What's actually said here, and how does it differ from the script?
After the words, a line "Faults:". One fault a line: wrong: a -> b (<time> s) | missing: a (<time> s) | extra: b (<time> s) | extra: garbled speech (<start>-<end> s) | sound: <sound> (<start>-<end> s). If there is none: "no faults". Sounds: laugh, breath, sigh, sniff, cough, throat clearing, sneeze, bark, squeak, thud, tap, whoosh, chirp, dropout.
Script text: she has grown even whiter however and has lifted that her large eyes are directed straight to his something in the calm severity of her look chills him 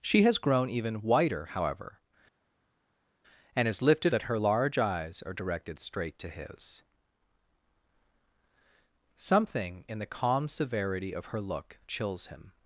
she has grown even whiter however and has lifted that her large eyes are directed straight to his something in the calm severity of her look chills him
Faults:
no faults